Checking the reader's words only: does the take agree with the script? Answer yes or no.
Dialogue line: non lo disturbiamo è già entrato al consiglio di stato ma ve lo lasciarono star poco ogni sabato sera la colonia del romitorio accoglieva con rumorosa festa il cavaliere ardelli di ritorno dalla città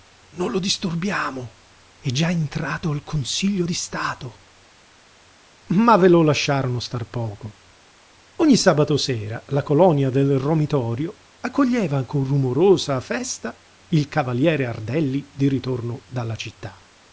yes